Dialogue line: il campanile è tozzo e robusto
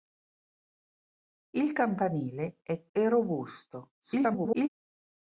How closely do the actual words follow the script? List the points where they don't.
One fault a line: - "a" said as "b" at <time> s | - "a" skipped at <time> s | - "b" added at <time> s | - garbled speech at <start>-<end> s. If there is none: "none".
- "tozzo" skipped at 2.9 s
- garbled speech at 4.0-4.7 s